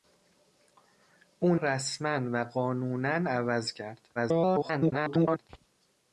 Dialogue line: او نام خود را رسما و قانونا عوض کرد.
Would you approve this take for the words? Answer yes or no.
no